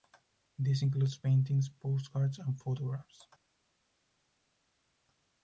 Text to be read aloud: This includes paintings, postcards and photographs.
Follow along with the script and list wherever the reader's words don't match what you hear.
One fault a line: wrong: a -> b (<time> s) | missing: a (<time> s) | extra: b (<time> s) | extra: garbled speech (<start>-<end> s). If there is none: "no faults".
no faults